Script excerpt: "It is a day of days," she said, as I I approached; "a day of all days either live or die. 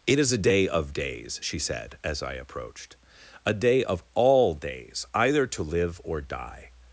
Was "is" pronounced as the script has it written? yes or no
yes